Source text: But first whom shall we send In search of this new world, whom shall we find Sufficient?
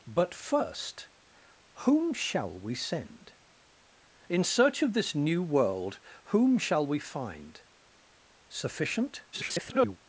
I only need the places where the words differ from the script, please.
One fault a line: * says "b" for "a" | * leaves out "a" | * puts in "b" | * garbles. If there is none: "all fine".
* garbles